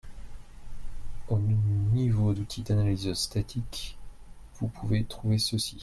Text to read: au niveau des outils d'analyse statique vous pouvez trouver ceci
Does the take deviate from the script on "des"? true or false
true